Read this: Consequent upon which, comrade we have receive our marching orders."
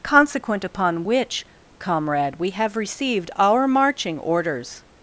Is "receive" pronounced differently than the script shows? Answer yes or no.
yes